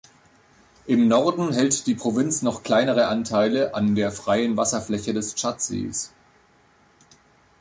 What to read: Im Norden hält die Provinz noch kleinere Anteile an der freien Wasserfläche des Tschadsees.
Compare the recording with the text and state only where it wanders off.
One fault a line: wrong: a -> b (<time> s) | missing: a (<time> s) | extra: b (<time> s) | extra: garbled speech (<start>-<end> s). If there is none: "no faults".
no faults